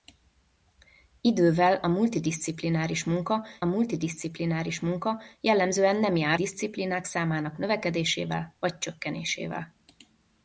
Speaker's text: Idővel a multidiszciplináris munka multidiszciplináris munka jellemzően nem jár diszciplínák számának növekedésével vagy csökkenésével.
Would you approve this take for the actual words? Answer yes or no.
yes